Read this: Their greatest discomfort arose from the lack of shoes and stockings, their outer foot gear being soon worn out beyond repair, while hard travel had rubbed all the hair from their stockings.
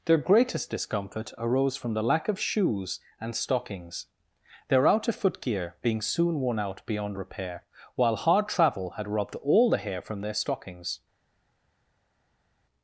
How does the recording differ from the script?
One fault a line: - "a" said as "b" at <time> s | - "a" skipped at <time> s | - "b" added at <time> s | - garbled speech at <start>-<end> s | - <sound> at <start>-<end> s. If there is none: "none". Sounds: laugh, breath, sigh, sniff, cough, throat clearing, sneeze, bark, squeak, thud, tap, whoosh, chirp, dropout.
none